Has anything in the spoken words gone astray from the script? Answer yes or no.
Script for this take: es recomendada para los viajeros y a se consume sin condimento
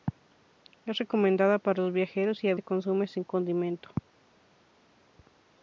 no